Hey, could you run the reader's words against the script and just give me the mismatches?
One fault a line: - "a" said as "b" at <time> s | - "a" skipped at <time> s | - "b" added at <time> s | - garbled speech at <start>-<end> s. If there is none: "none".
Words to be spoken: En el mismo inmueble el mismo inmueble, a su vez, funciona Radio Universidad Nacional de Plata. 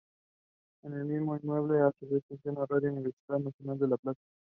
- "el mismo inmueble" skipped at 1.8 s
- "La" added at 3.9 s